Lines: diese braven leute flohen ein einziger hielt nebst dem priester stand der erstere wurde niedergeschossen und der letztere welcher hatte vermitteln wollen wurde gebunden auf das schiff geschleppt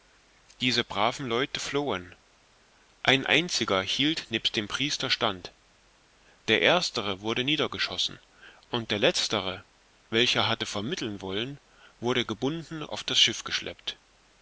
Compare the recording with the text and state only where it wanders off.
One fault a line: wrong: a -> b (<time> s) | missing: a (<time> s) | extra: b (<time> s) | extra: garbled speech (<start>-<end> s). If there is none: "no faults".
no faults